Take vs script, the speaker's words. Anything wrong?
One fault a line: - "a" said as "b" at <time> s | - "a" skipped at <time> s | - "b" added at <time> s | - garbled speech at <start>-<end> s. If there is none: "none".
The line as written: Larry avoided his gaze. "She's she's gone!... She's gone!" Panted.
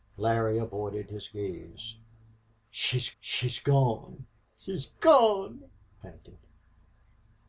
none